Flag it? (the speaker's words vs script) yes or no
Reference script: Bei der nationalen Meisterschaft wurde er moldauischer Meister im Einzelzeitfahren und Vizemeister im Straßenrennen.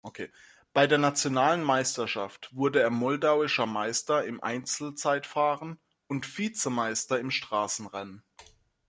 no